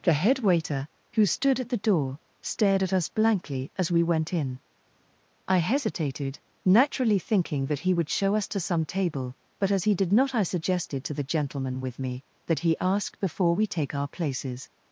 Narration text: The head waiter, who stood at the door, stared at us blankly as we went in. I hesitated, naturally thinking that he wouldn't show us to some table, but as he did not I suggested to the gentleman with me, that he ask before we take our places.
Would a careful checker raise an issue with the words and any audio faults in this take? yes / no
yes